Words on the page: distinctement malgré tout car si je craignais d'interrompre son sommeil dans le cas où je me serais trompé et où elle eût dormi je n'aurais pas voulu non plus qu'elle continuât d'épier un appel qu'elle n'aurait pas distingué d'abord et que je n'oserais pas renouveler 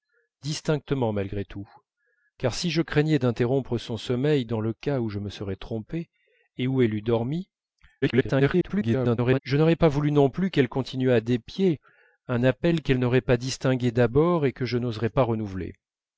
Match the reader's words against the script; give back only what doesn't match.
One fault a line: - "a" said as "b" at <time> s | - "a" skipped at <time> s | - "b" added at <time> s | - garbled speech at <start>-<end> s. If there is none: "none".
- garbled speech at 8.0-9.4 s